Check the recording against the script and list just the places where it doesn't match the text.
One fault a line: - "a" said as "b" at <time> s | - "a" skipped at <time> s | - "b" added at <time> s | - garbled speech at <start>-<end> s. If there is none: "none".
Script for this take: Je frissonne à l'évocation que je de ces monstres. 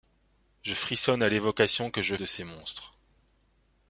none